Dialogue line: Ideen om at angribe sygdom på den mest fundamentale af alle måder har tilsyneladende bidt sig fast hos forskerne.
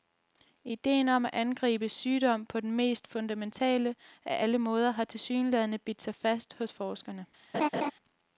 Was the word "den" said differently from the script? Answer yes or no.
no